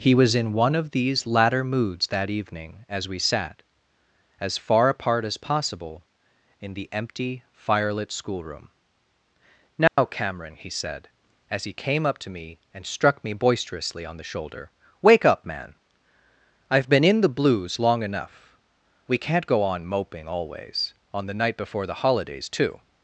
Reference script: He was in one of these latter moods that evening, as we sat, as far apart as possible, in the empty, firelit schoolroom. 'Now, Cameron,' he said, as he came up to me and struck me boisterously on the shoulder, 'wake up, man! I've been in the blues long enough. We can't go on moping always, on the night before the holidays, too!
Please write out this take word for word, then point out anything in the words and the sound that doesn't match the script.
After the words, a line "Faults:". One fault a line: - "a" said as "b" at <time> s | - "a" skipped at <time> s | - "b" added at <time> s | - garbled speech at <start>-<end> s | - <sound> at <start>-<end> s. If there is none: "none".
He was in one of these latter moods that evening, as we sat, as far apart as possible, in the empty, firelit schoolroom. 'Now, Cameron,' he said, as he came up to me and struck me boisterously on the shoulder, 'wake up, man! I've been in the blues long enough. We can't go on moping always, on the night before the holidays, too!
Faults:
- dropout at 9.9-10.0 s